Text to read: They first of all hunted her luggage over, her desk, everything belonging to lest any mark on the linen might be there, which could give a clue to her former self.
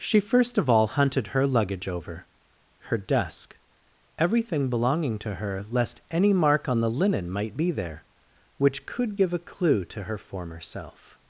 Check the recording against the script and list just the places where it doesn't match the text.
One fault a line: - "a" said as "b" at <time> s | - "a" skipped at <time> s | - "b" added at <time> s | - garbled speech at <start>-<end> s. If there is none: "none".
- "They" said as "She" at 0.0 s
- "her" added at 5.3 s